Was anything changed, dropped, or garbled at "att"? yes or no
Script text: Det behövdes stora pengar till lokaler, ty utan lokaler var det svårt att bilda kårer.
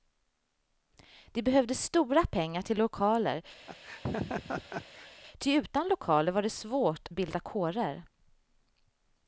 yes